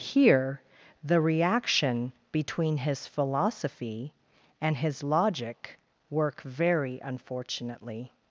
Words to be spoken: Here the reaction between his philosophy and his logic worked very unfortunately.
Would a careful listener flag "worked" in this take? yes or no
yes